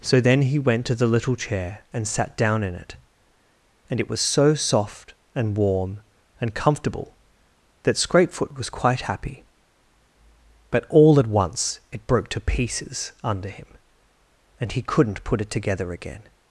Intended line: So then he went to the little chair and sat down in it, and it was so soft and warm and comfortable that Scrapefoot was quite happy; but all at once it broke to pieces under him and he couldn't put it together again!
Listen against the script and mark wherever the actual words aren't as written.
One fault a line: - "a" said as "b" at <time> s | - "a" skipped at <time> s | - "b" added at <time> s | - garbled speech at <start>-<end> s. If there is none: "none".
none